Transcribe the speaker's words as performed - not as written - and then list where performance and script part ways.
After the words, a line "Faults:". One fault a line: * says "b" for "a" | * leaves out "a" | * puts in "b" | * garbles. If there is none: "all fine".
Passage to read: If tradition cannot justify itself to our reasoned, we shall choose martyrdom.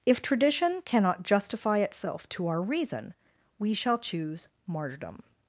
If tradition cannot justify itself to our reason, we shall choose martyrdom.
Faults:
* says "reason" for "reasoned"